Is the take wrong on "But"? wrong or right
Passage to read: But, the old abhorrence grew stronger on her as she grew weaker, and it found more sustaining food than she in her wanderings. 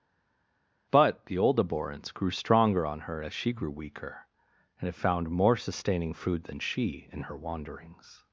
right